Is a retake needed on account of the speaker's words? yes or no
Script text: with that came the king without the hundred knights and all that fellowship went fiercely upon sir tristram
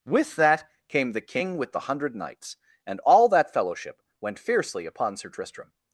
yes